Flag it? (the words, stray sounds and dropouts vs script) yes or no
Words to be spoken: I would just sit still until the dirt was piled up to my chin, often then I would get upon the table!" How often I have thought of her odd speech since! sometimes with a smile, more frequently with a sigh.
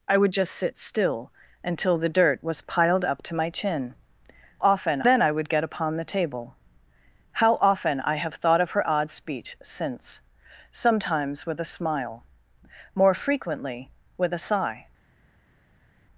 no